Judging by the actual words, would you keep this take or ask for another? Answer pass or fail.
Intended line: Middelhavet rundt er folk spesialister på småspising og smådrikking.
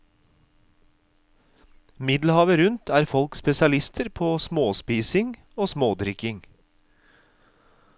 pass